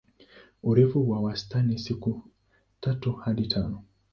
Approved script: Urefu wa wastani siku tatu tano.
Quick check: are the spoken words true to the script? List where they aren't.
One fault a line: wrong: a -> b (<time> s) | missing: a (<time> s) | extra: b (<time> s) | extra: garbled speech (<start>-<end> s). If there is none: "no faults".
extra: hadi (3.1 s)